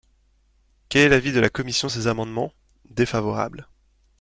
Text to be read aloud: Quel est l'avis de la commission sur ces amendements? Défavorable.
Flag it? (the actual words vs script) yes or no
yes